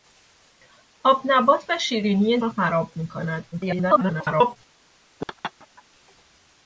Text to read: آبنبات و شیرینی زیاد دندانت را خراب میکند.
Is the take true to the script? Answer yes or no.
no